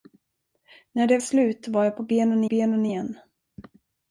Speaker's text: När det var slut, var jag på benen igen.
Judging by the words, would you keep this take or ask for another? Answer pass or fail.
fail